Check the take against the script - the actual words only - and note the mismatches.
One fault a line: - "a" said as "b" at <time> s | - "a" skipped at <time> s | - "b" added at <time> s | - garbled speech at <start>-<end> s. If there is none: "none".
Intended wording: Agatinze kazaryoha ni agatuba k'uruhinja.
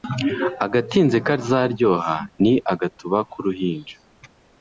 none